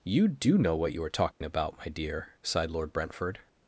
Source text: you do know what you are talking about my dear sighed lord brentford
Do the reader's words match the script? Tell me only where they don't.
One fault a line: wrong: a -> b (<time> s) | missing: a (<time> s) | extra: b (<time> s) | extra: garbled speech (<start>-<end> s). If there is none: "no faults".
no faults